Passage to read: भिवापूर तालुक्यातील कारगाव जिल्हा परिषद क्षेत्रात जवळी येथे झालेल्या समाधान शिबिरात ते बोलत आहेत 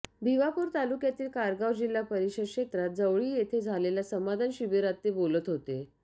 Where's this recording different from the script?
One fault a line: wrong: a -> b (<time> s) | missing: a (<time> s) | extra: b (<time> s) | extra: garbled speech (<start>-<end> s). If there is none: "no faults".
wrong: आहेत -> होते (5.5 s)